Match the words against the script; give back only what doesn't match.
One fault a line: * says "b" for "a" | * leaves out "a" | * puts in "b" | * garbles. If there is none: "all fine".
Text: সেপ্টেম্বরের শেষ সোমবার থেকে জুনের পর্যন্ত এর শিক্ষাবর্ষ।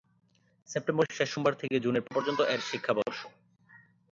all fine